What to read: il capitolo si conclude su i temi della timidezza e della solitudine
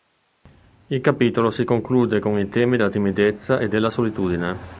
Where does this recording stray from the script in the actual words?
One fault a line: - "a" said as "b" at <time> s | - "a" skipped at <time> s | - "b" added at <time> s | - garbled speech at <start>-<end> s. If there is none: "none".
- "su" said as "con" at 2.2 s